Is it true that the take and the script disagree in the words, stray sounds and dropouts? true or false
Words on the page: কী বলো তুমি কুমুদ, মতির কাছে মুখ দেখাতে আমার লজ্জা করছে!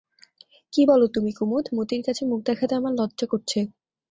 false